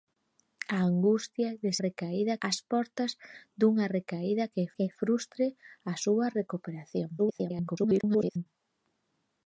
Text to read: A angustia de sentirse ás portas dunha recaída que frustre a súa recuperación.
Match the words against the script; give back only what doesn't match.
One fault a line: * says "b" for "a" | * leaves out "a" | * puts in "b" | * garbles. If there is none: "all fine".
* says "recaída" for "sentirse"
* puts in "que"
* garbles